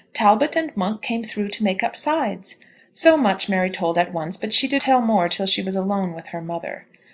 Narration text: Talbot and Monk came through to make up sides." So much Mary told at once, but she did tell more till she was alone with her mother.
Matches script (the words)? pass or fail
pass